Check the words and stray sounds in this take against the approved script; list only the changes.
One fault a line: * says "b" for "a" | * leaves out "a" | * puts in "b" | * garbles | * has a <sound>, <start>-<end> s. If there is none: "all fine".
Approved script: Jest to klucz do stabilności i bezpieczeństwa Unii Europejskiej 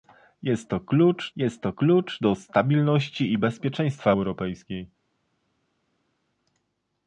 * puts in "jest to klucz"
* leaves out "Unii"